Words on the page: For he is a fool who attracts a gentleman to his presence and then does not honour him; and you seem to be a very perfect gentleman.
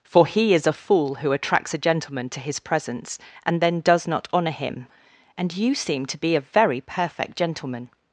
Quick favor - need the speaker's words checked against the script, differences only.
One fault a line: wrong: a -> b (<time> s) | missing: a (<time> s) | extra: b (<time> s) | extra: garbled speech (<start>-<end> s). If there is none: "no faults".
no faults